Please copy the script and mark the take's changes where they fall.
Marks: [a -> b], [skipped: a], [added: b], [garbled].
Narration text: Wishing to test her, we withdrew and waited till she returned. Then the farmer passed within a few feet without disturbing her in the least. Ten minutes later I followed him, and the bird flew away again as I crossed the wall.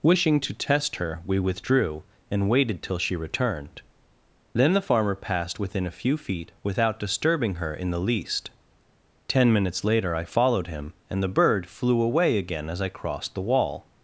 Wishing to test her, we withdrew and waited till she returned. Then the farmer passed within a few feet without disturbing her in the least. Ten minutes later I followed him, and the bird flew away again as I crossed the wall.